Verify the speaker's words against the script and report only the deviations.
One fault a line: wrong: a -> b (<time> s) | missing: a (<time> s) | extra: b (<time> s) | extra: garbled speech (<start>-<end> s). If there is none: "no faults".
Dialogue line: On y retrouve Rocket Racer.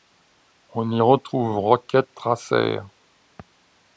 no faults